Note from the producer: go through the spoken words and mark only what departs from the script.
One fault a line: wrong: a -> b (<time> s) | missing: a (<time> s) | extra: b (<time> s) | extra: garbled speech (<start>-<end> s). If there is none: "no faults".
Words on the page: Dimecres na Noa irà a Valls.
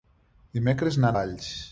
missing: Noa irà a (1.1 s)